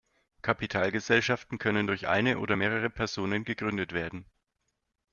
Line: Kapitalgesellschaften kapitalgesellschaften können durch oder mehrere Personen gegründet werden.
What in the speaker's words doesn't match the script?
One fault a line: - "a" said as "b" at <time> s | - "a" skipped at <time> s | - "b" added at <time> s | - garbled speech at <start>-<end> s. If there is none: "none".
- "kapitalgesellschaften" skipped at 1.6 s
- "eine" added at 2.1 s